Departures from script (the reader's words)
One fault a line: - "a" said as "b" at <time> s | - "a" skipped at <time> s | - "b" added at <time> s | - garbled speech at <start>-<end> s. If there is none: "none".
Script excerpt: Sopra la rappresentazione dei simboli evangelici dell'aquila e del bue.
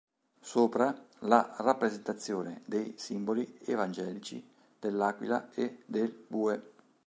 none